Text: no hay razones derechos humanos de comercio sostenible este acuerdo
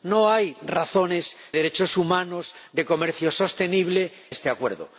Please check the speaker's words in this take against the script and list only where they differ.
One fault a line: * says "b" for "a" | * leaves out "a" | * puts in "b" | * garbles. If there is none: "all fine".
all fine